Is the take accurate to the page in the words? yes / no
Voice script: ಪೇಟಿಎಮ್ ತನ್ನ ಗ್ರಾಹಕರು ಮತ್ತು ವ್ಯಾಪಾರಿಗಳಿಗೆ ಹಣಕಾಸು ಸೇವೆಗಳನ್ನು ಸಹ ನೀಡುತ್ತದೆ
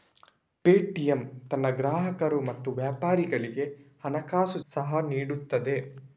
no